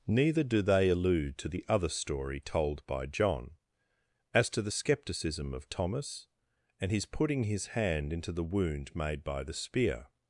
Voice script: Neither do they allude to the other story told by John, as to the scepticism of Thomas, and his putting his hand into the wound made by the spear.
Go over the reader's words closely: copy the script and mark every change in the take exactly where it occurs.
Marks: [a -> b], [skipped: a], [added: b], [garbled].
Neither do they allude to the other story told by John, as to the scepticism of Thomas, and his putting his hand into the wound made by the spear.